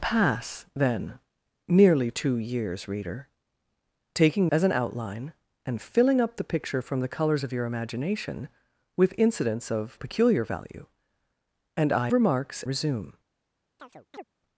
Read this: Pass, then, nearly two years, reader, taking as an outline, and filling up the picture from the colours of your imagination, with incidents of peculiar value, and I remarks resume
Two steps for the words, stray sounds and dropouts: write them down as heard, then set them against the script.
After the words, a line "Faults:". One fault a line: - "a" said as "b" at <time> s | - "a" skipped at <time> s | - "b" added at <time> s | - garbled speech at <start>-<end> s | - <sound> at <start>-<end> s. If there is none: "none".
Pass, then, nearly two years, reader, taking as an outline, and filling up the picture from the colours of your imagination, with incidents of peculiar value, and I remarks resume
Faults:
- chirp at 13.8-14.2 s